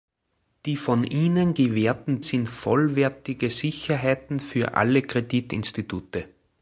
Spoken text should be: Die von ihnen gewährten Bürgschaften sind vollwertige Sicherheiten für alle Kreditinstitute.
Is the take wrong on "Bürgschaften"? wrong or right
wrong